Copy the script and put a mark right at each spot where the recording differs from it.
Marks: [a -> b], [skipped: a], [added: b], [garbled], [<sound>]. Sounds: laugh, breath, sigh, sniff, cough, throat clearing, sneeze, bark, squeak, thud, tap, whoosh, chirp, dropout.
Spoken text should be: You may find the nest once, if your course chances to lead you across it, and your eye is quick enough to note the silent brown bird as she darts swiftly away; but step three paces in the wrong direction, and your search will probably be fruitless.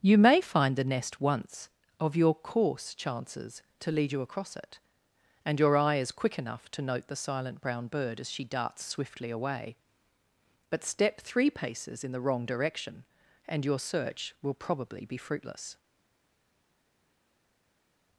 You may find the nest once, [if -> of] your course chances to lead you across it, and your eye is quick enough to note the silent brown bird as she darts swiftly away; but step three paces in the wrong direction, and your search will probably be fruitless.